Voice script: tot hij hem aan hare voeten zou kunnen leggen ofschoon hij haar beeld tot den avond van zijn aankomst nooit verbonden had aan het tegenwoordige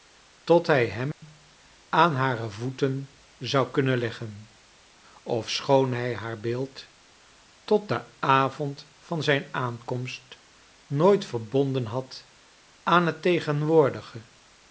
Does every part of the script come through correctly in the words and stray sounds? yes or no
no